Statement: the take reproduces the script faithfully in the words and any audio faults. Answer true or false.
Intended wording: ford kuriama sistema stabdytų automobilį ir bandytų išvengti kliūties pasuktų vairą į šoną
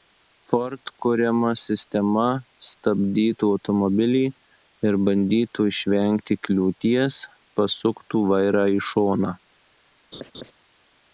false